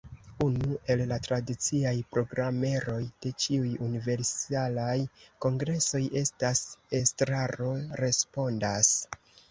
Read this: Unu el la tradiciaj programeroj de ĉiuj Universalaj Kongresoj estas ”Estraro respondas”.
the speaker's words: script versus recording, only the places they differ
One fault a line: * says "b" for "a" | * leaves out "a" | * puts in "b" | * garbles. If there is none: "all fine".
all fine